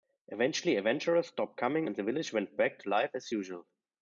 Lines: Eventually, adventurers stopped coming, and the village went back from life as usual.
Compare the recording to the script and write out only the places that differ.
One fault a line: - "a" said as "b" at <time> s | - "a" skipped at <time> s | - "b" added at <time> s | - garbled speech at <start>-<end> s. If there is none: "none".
- "from" said as "to" at 2.8 s